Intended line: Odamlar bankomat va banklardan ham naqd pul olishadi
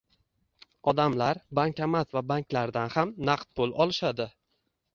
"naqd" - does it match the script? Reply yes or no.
yes